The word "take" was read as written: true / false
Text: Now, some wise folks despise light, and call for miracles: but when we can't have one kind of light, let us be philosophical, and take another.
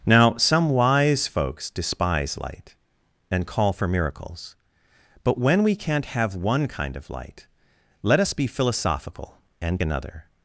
false